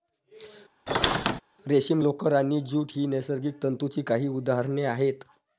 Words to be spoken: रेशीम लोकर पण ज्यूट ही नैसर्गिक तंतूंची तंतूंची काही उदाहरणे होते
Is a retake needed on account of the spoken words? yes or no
yes